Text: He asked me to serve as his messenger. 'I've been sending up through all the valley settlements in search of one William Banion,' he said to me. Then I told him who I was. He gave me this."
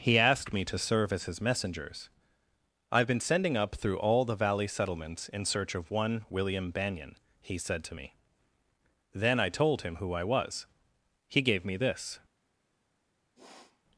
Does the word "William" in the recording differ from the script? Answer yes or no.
no